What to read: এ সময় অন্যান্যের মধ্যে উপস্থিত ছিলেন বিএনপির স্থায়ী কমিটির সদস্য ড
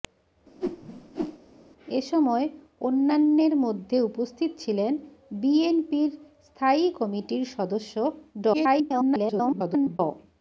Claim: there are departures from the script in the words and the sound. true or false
true